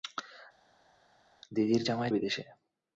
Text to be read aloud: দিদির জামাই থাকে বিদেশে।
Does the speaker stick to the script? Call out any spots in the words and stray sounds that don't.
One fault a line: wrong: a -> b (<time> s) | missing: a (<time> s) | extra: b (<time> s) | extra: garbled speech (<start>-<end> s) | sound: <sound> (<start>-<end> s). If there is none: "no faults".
missing: থাকে (2.1 s)